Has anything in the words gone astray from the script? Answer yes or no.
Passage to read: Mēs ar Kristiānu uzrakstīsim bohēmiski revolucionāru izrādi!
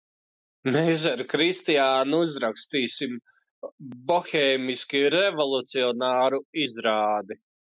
no